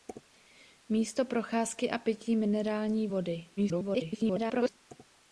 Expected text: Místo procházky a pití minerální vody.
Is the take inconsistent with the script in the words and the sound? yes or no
yes